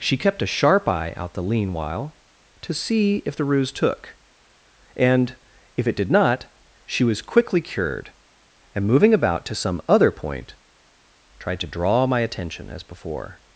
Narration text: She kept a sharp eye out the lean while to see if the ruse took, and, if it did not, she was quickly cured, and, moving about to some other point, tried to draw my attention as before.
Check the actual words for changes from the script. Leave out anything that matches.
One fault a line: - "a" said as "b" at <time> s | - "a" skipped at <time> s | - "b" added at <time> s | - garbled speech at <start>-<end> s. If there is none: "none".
none